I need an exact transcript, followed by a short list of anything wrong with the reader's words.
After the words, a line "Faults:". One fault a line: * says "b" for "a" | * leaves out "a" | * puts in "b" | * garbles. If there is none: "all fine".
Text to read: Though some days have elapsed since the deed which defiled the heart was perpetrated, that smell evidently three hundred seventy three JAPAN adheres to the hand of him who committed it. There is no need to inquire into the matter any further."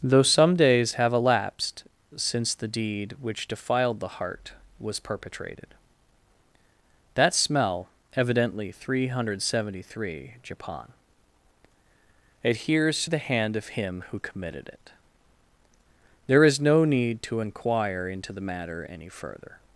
Though some days have elapsed since the deed which defiled the heart was perpetrated, that smell evidently three hundred seventy three JAPAN adheres to the hand of him who committed it. There is no need to inquire into the matter any further."
Faults:
all fine